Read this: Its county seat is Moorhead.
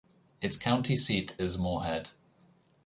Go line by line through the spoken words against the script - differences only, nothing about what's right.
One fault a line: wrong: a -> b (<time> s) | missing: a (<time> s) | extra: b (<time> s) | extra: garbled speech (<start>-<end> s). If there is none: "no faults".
no faults